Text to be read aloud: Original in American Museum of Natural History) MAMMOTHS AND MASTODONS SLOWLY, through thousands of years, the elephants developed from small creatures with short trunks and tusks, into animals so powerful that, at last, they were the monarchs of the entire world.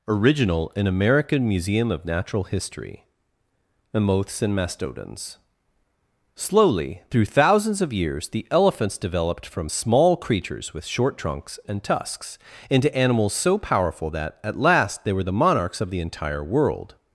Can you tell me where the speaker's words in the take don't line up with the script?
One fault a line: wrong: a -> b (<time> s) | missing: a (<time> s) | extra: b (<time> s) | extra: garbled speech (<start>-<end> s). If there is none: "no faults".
no faults